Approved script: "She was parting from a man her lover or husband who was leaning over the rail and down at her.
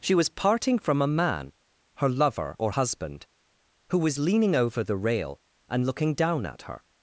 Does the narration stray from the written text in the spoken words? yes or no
yes